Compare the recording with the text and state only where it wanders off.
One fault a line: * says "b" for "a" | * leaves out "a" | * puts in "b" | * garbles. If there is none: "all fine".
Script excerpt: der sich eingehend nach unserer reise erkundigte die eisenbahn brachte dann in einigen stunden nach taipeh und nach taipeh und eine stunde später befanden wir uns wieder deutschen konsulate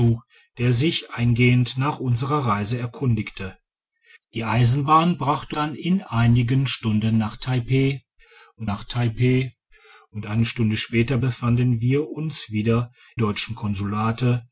all fine